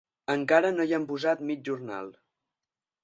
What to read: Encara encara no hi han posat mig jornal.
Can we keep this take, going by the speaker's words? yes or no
no